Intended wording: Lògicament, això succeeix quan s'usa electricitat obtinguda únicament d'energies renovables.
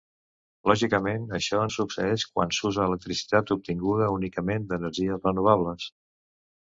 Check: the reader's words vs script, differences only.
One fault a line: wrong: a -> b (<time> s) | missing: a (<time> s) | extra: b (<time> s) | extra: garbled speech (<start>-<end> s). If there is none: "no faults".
no faults